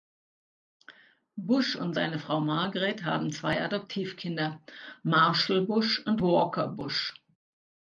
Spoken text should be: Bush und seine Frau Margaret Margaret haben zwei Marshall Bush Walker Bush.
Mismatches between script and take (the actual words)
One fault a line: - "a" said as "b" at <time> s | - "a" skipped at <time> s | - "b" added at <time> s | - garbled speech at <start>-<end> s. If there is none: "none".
- "Margaret" skipped at 3.0 s
- "Adoptivkinder" added at 3.6 s
- "und" added at 6.0 s